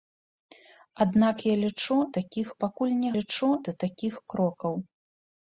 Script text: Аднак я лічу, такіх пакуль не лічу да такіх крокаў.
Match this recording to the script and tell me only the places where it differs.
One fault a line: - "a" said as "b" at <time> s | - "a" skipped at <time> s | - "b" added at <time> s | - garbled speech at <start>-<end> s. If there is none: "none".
none